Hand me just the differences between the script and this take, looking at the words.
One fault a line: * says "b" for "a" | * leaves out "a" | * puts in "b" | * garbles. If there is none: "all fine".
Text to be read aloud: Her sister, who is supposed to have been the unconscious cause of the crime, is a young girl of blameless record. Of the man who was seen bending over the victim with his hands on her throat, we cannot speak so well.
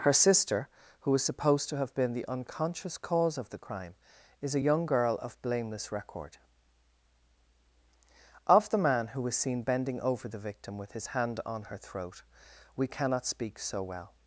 * says "hand" for "hands"